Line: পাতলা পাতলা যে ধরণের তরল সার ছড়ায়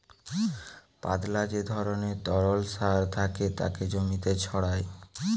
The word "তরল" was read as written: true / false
true